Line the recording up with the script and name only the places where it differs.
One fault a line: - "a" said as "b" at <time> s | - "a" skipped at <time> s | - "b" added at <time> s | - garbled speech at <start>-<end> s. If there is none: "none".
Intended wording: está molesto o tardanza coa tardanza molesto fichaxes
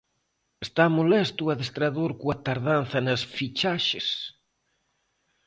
- "tardanza" said as "adestrador" at 1.6 s
- "molesto" said as "nas" at 3.1 s